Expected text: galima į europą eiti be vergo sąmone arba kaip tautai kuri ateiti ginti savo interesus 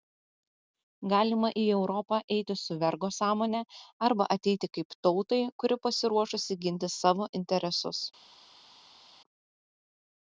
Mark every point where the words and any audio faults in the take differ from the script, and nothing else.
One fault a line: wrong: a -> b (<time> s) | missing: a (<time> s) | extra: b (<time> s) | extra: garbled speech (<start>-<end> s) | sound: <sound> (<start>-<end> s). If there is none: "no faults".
wrong: be -> su (2.6 s)
extra: ateiti (4.4 s)
wrong: ateiti -> pasiruošusi (5.9 s)